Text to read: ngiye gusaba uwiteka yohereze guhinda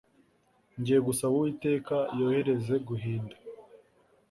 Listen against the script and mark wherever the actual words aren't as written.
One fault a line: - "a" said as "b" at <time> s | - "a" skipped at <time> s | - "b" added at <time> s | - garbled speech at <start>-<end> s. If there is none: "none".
none